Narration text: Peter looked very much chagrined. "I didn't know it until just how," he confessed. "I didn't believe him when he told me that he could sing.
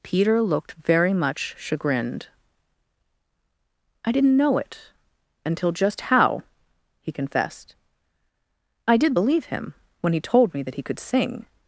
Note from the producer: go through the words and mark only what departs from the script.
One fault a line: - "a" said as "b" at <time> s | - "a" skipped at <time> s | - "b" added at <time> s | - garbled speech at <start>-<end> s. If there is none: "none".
- "didn't" said as "did" at 9.0 s